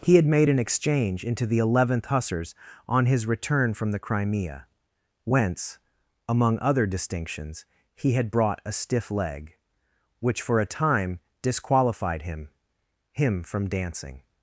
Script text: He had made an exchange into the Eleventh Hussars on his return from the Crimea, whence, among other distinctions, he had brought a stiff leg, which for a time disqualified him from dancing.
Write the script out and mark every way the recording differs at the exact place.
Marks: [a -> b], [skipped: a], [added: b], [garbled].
He had made an exchange into the Eleventh Hussars on his return from the Crimea, whence, among other distinctions, he had brought a stiff leg, which for a time disqualified him [added: him] from dancing.